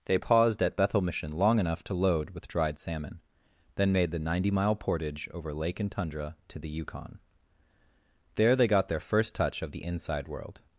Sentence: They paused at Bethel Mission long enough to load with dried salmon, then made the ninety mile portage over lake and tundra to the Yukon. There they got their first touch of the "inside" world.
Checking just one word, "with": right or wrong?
right